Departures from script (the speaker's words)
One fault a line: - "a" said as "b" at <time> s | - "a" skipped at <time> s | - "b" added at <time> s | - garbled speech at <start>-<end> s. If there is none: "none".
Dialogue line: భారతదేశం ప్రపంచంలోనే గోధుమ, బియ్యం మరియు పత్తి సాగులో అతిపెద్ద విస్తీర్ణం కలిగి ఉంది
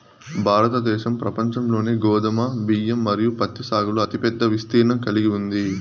none